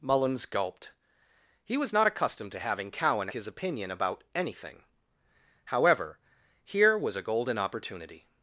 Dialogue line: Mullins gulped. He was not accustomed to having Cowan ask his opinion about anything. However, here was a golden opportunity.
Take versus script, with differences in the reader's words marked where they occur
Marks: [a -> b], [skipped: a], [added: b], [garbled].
Mullins gulped. He was not accustomed to having Cowan [skipped: ask] his opinion about anything. However, here was a golden opportunity.